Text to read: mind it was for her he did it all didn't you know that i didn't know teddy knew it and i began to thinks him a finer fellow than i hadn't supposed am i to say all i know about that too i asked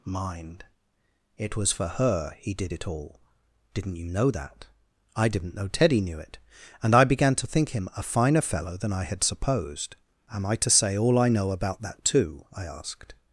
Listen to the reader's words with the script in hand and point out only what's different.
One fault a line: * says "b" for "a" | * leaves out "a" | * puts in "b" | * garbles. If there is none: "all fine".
* says "think" for "thinks"
* says "had" for "hadn't"